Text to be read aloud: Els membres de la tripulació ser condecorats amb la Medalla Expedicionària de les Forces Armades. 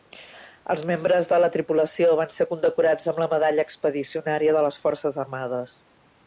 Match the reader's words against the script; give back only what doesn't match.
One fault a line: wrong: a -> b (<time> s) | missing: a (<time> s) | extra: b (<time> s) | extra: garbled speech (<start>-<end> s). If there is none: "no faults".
extra: van (2.2 s)